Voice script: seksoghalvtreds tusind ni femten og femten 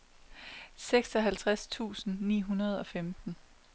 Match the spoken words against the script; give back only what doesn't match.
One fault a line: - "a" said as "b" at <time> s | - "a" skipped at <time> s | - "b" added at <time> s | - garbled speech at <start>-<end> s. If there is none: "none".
- "femten" said as "hundrede" at 2.4 s